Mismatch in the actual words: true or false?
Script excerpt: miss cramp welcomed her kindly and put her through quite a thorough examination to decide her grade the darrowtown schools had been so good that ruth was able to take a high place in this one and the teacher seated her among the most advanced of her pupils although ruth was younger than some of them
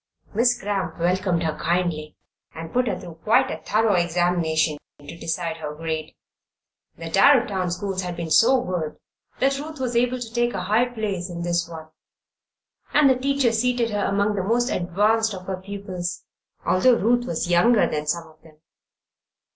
false